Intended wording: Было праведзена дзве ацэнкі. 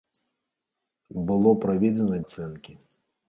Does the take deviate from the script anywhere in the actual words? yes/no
yes